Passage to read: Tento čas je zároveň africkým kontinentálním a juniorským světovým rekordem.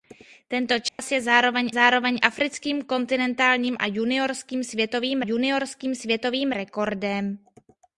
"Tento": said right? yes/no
yes